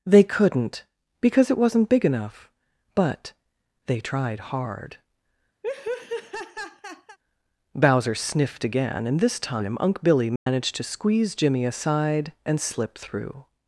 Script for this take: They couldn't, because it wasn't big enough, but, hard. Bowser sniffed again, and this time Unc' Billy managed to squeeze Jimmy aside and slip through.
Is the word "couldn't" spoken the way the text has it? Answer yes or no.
yes